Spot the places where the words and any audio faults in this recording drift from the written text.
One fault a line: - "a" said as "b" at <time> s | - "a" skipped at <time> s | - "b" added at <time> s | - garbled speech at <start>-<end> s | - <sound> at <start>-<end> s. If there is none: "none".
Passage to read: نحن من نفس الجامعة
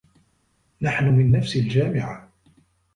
none